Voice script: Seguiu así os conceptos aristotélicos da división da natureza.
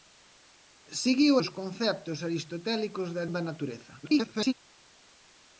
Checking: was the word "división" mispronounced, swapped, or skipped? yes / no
yes